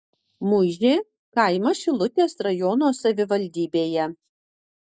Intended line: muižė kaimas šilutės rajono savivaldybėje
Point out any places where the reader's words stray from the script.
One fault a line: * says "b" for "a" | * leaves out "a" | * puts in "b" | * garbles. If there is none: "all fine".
all fine